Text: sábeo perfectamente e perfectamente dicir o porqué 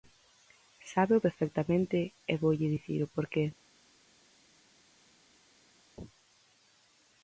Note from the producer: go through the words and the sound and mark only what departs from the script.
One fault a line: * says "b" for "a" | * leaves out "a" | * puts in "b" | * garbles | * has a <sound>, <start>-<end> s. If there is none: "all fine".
* says "voulle" for "perfectamente"